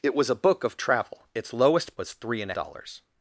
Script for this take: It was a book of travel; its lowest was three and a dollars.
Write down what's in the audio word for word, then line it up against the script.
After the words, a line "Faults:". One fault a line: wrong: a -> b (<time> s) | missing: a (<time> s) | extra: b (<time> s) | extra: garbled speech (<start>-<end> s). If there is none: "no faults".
It was a book of travel; its lowest was three and a dollars.
Faults:
no faults